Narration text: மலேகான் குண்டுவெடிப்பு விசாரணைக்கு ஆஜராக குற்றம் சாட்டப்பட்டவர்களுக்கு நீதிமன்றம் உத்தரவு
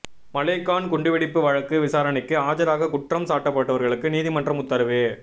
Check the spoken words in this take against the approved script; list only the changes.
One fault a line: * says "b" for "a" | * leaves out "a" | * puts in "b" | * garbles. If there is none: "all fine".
* puts in "வழக்கு"